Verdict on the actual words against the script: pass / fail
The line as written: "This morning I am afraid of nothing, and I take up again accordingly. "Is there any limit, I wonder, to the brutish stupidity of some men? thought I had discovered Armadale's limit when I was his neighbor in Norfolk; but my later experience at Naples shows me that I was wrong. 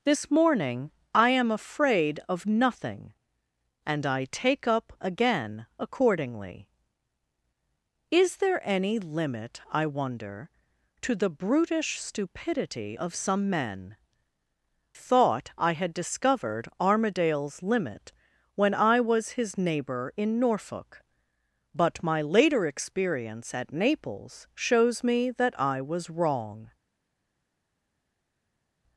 pass